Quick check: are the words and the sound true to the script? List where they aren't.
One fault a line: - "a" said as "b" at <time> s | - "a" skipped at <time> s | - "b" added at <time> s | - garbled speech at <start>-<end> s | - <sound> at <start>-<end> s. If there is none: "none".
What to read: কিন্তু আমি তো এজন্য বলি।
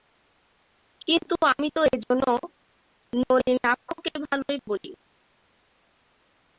- "নলিনাক্ষকে ভালোই" added at 3.1 s